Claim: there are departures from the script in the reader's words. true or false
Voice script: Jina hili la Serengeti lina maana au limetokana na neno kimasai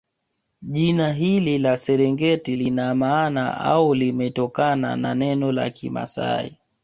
true